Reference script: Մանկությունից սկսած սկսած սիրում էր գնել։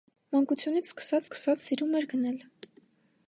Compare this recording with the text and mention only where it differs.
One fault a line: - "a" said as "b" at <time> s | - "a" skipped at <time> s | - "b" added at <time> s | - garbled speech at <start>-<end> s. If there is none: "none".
none